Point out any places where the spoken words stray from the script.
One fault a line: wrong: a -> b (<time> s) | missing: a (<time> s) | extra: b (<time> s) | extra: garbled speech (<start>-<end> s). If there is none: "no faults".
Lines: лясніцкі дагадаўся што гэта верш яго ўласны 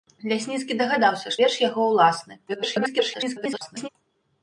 missing: што гэта (1.4 s)
extra: garbled speech (2.5-3.9 s)